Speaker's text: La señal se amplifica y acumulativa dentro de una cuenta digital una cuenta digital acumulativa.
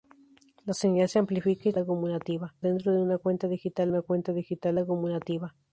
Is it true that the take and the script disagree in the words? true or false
false